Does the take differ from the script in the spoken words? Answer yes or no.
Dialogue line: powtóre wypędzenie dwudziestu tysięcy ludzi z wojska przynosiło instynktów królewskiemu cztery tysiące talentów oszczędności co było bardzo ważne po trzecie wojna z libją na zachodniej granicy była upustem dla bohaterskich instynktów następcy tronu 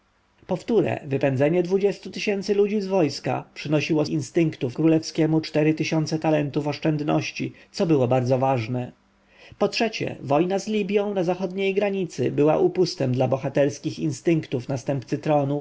no